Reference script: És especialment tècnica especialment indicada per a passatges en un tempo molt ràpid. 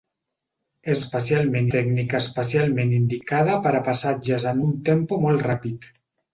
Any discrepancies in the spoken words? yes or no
no